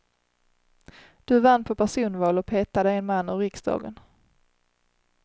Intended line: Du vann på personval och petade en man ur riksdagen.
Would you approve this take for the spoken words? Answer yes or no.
yes